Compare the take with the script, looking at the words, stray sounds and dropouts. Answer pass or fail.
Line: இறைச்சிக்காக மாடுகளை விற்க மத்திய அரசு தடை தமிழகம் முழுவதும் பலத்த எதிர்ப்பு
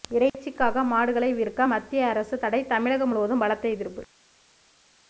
pass